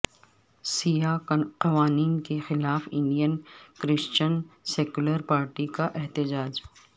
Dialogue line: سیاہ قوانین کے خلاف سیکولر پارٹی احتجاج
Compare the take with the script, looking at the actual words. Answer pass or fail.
fail